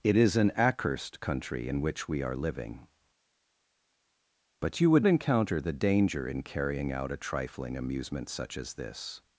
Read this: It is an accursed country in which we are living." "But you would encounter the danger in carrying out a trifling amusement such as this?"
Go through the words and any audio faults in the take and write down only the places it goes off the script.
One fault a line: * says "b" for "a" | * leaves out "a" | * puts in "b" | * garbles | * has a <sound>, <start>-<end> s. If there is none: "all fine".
all fine